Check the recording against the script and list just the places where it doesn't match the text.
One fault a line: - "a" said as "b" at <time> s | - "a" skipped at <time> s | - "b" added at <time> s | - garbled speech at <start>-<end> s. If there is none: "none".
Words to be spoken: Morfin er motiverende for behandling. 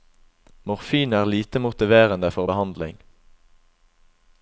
- "lite" added at 1.2 s